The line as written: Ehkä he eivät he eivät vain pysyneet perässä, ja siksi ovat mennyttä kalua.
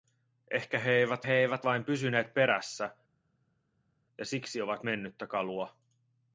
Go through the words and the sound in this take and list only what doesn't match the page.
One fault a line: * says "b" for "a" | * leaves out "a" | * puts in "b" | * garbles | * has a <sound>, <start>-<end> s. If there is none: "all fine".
all fine